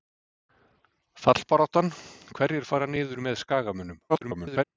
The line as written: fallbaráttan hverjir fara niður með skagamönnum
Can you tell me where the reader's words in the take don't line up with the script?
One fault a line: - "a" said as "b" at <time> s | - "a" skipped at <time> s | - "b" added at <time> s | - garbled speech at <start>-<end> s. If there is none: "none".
- garbled speech at 4.1-4.6 s